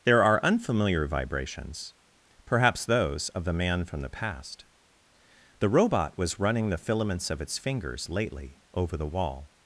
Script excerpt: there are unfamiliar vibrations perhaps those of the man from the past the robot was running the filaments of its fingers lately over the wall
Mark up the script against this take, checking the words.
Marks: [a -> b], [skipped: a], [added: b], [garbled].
there are unfamiliar vibrations perhaps those of the man from the past the robot was running the filaments of its fingers lately over the wall